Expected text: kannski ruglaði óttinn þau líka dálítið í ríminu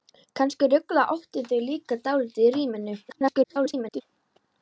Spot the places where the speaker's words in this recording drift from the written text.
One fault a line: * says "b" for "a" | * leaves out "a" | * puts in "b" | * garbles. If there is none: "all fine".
* garbles